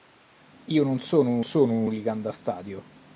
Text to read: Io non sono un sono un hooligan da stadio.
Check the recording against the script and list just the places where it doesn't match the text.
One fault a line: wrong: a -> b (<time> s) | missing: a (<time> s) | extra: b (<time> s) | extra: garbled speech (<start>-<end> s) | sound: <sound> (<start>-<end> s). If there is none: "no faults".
no faults